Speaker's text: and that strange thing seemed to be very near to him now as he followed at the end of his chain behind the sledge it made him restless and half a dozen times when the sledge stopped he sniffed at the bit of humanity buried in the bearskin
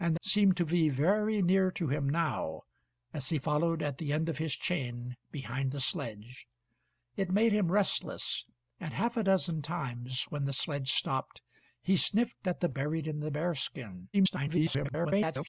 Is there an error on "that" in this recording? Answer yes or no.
yes